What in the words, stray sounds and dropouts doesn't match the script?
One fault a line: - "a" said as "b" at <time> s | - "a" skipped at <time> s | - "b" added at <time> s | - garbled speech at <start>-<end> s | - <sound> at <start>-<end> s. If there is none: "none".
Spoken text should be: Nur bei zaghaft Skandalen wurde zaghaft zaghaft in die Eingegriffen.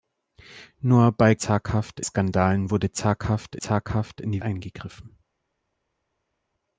none